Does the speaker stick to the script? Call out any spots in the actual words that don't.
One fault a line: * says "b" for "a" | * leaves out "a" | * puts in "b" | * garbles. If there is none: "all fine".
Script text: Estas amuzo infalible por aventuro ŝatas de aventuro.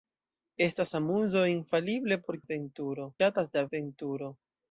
all fine